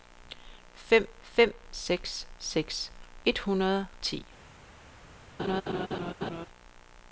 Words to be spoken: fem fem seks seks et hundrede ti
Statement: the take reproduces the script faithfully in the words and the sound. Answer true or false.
false